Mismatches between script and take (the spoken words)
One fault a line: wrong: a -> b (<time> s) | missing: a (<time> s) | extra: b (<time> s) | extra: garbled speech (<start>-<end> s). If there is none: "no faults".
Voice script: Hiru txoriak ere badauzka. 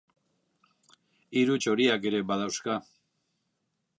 no faults